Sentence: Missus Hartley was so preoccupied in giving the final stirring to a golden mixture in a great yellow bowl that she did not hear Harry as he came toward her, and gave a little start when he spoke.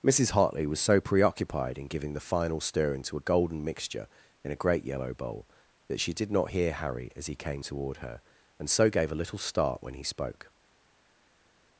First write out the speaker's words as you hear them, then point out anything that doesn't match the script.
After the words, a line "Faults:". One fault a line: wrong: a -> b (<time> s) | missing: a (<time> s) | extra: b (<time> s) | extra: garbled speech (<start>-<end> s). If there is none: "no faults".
Missus Hartley was so preoccupied in giving the final stirring to a golden mixture in a great yellow bowl that she did not hear Harry as he came toward her, and so gave a little start when he spoke.
Faults:
extra: so (8.7 s)